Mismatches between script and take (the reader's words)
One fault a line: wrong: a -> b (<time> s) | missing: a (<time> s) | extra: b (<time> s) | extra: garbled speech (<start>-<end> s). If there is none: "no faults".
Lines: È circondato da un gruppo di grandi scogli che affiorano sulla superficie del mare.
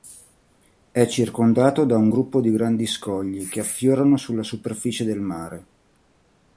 no faults